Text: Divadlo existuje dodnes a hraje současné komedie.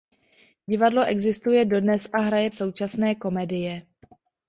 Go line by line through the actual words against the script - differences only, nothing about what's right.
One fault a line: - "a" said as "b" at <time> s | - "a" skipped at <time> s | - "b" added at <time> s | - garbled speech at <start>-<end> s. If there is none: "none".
none